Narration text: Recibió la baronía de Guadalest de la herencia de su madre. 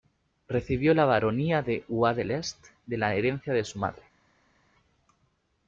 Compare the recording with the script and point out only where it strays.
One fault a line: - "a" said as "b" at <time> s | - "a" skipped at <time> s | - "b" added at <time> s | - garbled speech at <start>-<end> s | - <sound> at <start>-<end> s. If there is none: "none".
none